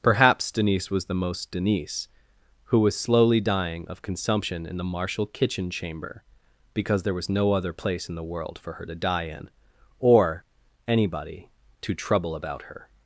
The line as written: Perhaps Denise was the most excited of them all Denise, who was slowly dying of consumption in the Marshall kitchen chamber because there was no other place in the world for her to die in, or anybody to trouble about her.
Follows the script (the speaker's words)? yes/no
no